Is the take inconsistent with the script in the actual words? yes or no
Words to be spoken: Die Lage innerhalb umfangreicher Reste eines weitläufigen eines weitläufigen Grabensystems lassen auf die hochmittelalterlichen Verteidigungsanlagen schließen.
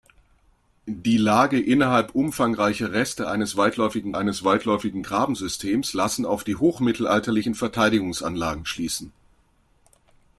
no